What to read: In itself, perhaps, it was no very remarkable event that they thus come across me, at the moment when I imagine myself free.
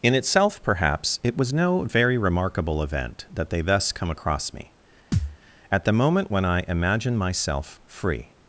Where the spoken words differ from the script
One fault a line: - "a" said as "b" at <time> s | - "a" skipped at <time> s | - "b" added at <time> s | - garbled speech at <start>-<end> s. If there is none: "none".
none